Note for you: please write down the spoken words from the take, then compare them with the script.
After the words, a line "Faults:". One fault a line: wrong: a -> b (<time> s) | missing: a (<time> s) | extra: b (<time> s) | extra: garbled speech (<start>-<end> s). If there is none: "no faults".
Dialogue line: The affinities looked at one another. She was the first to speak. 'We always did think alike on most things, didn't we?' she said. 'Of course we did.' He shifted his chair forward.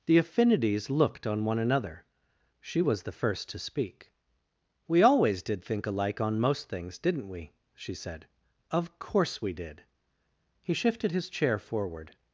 The affinities looked on one another. She was the first to speak. 'We always did think alike on most things, didn't we?' she said. 'Of course we did.' He shifted his chair forward.
Faults:
wrong: at -> on (1.3 s)